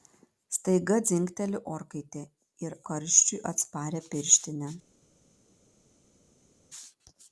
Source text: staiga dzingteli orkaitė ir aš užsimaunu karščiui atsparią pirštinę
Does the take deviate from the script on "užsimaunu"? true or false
true